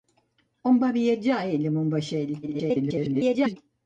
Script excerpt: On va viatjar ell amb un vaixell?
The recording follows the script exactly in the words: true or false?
false